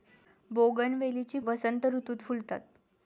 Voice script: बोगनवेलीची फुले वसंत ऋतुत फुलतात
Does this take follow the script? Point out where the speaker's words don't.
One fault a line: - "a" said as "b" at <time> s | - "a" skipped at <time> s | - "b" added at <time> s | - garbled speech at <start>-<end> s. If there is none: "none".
- "फुले" skipped at 1.4 s